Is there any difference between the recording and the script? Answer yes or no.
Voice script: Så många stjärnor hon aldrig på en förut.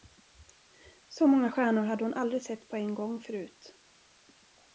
yes